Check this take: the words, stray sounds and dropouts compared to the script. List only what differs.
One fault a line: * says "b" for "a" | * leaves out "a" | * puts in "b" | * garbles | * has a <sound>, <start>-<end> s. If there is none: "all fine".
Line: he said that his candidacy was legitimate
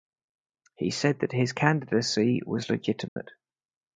* has a dropout, 3.1-3.2 s